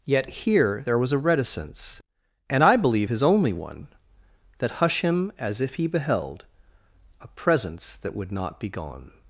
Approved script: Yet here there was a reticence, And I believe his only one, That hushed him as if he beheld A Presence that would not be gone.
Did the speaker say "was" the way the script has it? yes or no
yes